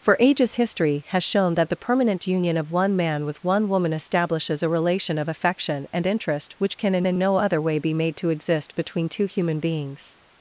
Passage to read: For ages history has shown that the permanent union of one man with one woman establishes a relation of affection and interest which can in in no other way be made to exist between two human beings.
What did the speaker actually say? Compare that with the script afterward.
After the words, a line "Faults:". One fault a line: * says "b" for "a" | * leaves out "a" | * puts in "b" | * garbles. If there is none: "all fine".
For ages history has shown that the permanent union of one man with one woman establishes a relation of affection and interest which can in in no other way be made to exist between two human beings.
Faults:
all fine